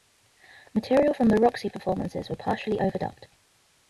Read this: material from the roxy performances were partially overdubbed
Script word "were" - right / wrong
right